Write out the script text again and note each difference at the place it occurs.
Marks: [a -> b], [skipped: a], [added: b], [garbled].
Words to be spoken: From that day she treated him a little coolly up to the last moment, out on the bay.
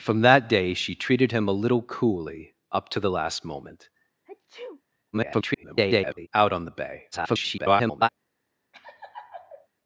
From that day she treated him a little coolly up to the last moment, [garbled] out on the bay. [garbled]